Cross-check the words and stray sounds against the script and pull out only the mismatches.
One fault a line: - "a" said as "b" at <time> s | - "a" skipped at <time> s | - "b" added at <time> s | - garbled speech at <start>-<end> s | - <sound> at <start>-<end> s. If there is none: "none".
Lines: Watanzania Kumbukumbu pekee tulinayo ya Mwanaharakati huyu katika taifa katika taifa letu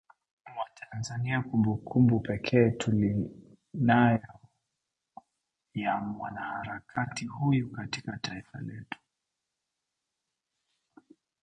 - "katika taifa" skipped at 8.6 s